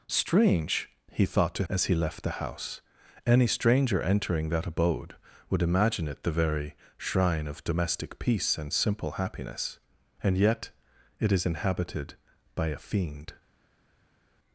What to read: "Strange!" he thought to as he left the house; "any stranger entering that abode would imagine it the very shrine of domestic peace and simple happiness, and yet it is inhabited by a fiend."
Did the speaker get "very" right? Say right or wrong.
right